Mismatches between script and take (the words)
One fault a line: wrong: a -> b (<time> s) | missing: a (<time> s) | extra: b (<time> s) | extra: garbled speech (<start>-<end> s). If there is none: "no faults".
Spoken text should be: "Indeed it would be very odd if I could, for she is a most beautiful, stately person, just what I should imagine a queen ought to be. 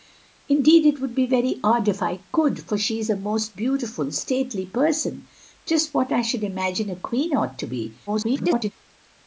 extra: garbled speech (8.1-8.7 s)